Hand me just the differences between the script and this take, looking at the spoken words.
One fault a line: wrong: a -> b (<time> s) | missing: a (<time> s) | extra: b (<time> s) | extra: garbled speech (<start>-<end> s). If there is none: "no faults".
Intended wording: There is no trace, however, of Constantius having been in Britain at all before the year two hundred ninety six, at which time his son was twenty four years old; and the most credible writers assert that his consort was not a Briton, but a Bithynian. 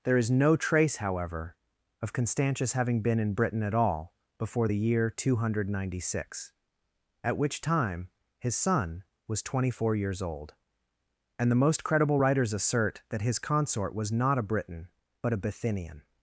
no faults